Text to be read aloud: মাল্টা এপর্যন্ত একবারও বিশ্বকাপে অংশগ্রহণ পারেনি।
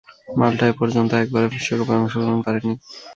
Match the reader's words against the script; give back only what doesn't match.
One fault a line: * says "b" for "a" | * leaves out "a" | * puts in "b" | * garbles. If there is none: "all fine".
all fine